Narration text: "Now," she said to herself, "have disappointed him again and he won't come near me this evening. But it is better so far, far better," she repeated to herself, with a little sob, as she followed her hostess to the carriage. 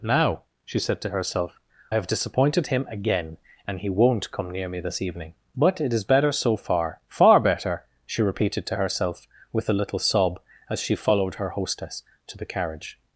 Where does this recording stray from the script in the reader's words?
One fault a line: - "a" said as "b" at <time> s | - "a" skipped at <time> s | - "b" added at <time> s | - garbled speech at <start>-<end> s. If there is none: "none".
none